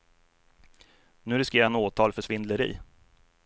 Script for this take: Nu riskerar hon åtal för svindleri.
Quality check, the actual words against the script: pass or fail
fail